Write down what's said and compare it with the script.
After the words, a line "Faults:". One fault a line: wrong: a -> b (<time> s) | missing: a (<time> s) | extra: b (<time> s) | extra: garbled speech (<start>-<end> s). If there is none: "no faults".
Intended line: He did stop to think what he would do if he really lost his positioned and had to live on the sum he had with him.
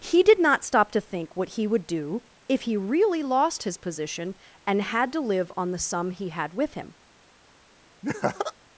He did not stop to think what he would do if he really lost his position and had to live on the sum he had with him.
Faults:
extra: not (0.4 s)
wrong: positioned -> position (3.8 s)